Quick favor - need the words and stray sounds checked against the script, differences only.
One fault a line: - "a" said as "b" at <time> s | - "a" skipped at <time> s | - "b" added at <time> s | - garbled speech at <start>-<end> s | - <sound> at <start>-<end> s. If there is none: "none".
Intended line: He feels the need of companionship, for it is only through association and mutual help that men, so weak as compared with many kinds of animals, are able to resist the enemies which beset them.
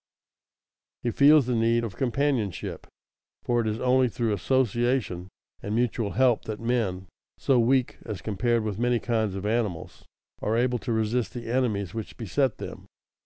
none